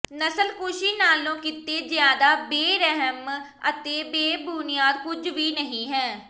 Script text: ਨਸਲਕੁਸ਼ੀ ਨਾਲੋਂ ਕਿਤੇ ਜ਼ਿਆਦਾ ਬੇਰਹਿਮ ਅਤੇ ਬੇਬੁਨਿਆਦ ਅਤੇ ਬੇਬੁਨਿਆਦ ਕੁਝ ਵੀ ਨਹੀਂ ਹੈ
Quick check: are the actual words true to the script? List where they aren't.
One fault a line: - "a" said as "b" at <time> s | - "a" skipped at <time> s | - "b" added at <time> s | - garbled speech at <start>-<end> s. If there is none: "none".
- "ਅਤੇ ਬੇਬੁਨਿਆਦ" skipped at 5.0 s